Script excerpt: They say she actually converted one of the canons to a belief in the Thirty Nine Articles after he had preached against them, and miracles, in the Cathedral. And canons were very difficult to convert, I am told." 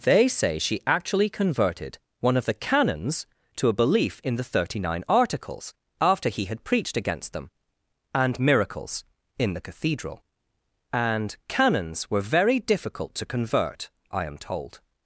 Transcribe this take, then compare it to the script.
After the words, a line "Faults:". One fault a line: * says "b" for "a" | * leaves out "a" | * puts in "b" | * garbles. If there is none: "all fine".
They say she actually converted one of the canons to a belief in the Thirty Nine Articles after he had preached against them, and miracles, in the Cathedral. And canons were very difficult to convert, I am told."
Faults:
all fine